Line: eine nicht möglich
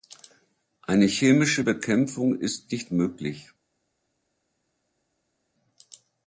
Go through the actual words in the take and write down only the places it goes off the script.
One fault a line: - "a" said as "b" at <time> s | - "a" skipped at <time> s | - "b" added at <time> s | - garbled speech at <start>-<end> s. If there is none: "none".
- "chemische bekämpfung ist" added at 1.1 s